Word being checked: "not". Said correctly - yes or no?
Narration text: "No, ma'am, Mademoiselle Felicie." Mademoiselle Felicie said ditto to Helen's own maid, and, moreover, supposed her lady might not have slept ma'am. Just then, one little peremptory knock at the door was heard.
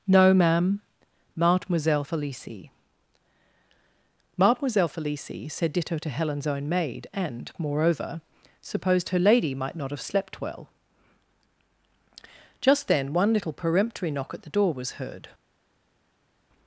yes